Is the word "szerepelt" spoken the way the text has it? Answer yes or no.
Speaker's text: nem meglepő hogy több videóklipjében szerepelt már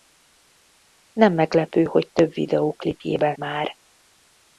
no